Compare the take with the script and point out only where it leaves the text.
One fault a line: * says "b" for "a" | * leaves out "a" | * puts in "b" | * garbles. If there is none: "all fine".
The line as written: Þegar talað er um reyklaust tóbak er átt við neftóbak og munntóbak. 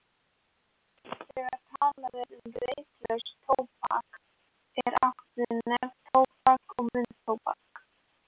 all fine